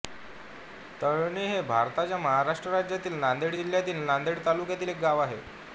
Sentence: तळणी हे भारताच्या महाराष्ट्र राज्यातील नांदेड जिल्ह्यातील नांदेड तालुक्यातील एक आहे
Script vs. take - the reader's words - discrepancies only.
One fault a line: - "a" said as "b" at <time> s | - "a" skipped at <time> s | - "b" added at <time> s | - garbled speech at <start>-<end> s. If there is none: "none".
- "गाव" added at 5.0 s